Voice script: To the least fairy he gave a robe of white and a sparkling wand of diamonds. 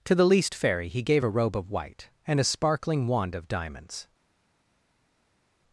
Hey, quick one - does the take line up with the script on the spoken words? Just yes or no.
yes